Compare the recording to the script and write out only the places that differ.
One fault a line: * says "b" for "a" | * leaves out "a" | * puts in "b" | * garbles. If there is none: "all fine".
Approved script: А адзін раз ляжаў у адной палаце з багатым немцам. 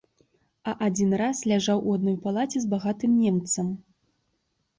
all fine